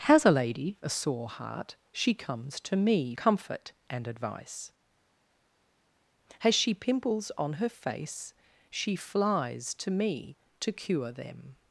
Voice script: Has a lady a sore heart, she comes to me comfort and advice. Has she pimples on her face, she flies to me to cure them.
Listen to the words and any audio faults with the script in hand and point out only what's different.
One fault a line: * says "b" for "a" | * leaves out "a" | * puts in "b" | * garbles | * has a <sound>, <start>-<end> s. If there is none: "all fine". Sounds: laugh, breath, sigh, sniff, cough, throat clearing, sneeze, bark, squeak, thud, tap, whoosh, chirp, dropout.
all fine